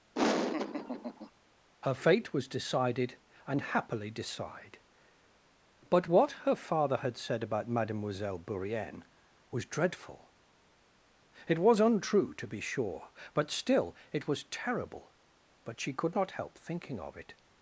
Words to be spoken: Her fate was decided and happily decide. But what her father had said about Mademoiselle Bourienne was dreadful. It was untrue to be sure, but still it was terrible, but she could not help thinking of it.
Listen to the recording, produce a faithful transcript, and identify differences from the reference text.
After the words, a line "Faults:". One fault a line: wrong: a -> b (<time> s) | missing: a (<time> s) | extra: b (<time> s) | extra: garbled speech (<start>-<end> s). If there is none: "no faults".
Her fate was decided and happily decide. But what her father had said about Mademoiselle Bourienne was dreadful. It was untrue to be sure, but still it was terrible, but she could not help thinking of it.
Faults:
no faults